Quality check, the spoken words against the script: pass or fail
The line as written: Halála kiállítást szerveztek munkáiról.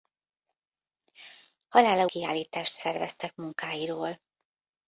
pass